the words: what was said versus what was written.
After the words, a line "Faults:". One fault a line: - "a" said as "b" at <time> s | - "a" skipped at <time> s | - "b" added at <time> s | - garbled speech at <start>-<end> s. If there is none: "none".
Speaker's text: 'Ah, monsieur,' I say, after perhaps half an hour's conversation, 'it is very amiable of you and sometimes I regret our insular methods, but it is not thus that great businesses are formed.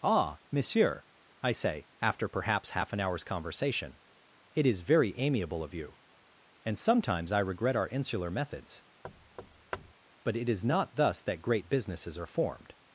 'Ah, monsieur,' I say, after perhaps half an hour's conversation, 'it is very amiable of you and sometimes I regret our insular methods, but it is not thus that great businesses are formed.
Faults:
none